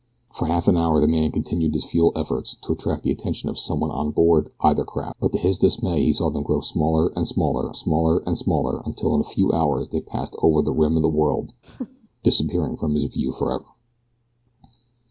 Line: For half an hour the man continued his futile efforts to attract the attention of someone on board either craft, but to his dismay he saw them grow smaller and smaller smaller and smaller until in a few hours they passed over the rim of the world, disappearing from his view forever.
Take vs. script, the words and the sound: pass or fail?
fail